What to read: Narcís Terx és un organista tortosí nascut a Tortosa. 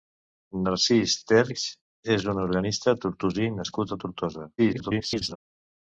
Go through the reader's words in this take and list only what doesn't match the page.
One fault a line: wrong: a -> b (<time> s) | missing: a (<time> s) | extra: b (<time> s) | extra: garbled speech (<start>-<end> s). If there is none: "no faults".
extra: garbled speech (4.6-5.4 s)